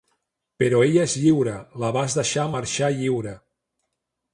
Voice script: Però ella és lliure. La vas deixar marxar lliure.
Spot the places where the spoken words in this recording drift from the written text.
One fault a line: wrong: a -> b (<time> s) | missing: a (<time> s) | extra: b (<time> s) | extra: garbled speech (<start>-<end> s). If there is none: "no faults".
no faults